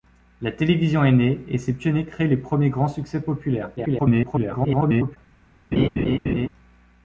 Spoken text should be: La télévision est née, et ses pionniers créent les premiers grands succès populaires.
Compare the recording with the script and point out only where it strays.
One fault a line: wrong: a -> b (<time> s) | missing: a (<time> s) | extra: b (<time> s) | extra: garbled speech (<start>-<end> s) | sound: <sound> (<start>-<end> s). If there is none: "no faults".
extra: garbled speech (3.8-5.2 s)
sound: laugh (5.7-6.5 s)